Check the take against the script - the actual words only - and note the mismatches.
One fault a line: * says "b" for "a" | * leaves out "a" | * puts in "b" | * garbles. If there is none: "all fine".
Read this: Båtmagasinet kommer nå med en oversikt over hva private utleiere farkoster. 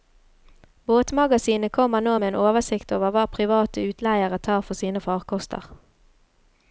* puts in "tar for sine"